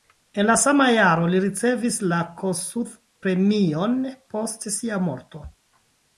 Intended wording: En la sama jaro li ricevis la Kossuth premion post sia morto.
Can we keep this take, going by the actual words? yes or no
yes